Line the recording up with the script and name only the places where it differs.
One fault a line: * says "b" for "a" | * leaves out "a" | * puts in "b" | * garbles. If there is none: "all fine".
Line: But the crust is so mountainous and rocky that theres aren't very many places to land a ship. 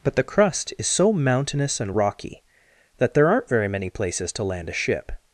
* says "there" for "theres"